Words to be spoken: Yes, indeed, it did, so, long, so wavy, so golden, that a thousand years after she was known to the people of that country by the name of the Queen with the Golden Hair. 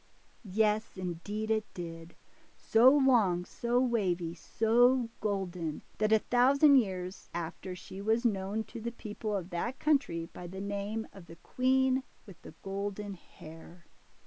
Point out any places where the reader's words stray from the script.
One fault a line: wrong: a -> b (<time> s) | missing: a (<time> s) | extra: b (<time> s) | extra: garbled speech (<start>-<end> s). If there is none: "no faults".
no faults